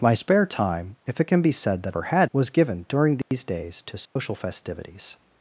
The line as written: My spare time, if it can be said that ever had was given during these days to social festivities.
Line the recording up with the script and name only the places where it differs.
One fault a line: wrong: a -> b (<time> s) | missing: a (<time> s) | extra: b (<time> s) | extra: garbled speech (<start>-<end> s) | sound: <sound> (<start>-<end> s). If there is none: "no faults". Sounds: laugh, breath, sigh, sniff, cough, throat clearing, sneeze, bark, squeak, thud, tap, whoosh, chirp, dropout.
sound: dropout (3.2-3.3 s)
sound: dropout (4.1-4.2 s)